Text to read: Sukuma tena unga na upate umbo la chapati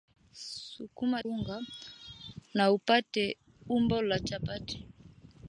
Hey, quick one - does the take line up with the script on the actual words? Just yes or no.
no